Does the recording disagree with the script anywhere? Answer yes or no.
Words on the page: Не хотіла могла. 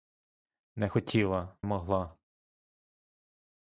no